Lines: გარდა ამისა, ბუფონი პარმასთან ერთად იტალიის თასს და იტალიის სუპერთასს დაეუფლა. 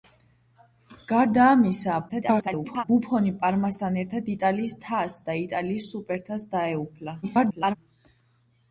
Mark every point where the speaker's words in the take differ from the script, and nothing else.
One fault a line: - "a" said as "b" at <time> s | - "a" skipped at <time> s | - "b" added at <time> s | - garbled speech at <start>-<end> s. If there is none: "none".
- garbled speech at 2.1-2.8 s
- garbled speech at 7.2-7.8 s